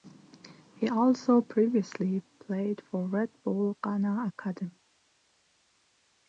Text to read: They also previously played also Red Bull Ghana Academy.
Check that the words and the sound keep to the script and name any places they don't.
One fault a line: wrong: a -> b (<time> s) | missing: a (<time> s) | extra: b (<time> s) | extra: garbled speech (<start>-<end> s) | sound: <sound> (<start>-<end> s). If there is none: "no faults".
wrong: They -> He (0.8 s)
wrong: also -> for (2.9 s)